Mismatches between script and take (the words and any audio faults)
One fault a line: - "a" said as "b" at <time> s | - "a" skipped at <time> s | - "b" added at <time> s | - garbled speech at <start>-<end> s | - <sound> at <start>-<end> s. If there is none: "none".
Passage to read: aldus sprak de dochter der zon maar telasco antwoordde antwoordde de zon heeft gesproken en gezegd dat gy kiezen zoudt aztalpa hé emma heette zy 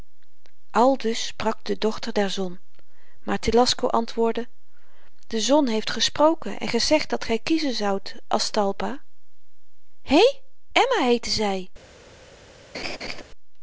- "antwoordde" skipped at 4.5 s
- laugh at 12.7-13.2 s